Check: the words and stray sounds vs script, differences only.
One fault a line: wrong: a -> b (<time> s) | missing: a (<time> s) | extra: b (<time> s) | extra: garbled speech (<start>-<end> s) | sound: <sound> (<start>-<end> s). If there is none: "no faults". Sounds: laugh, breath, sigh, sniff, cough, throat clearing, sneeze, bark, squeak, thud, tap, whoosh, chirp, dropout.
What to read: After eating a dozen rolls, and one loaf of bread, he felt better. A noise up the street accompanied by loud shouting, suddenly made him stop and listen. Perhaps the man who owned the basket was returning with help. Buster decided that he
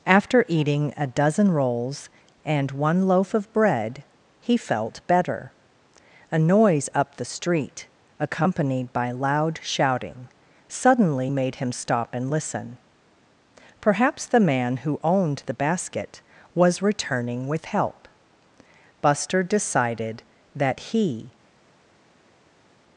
no faults